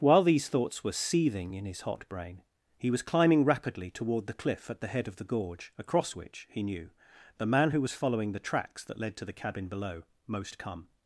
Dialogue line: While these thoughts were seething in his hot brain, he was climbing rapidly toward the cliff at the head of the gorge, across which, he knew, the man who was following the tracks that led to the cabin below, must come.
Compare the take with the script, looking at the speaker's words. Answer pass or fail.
fail